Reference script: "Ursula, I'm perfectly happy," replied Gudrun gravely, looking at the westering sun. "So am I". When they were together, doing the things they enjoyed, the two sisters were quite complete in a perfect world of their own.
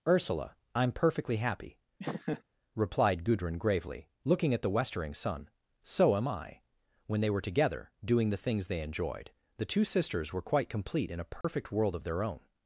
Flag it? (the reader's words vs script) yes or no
no